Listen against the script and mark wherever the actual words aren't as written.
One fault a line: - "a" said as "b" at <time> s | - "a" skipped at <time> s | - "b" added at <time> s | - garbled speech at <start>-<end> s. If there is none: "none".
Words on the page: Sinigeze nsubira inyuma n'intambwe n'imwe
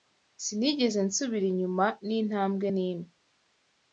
none